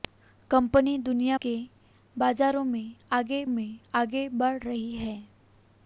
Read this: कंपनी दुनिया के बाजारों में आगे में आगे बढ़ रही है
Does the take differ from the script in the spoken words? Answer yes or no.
no